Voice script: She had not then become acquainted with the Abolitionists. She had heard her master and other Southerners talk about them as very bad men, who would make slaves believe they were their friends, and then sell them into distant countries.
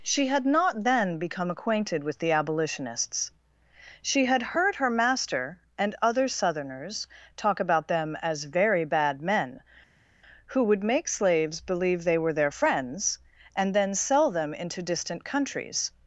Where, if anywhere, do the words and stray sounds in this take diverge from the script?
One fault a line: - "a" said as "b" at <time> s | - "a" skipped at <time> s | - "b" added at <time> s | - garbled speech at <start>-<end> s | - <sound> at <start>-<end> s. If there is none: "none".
none